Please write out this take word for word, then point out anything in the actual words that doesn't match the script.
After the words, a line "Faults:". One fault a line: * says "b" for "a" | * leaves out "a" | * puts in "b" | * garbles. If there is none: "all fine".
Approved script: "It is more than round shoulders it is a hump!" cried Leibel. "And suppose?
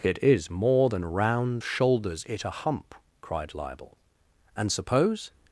"It is more than round shoulders it a hump!" cried Leibel. "And suppose?
Faults:
* leaves out "is"